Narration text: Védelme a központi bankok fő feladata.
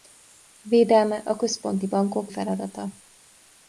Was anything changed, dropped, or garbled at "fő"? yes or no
yes